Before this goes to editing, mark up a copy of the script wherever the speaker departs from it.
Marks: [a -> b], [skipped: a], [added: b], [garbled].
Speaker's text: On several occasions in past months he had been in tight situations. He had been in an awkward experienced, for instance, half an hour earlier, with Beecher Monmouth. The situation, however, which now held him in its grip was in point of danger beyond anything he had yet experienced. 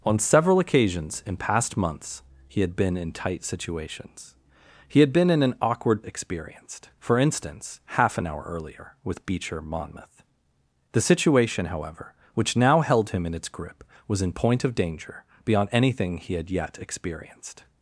On several occasions in past months he had been in tight situations. He had been in an awkward experienced, for instance, half an hour earlier, with Beecher Monmouth. The situation, however, which now held him in its grip was in point of danger beyond anything he had yet experienced.